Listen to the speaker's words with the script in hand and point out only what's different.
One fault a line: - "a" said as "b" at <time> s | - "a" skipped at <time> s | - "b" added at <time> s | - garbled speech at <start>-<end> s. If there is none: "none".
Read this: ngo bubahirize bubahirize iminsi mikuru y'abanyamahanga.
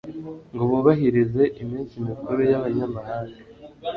- "bubahirize" skipped at 1.4 s